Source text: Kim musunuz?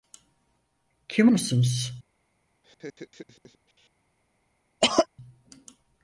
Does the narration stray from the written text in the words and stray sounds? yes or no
yes